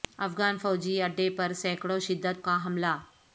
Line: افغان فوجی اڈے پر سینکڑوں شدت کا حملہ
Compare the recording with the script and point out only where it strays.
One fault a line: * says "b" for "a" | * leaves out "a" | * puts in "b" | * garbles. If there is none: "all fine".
all fine